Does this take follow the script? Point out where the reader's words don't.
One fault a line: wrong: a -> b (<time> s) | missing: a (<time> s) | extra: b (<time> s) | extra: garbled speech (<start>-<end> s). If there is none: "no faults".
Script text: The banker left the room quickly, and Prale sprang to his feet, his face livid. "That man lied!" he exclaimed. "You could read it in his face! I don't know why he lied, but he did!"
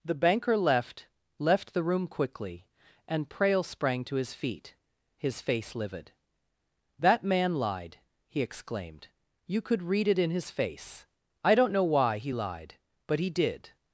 extra: left (1.4 s)